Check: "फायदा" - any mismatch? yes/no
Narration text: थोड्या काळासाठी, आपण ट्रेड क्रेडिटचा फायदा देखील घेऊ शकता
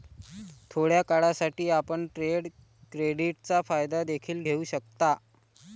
no